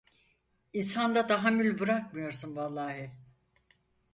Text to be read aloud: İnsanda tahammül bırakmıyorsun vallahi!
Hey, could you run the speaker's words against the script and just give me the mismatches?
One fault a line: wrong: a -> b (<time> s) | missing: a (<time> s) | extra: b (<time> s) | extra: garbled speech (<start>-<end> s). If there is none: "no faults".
no faults